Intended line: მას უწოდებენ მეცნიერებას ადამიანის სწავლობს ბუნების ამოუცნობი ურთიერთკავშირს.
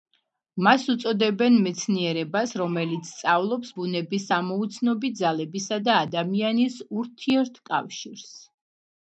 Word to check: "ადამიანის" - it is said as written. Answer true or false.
false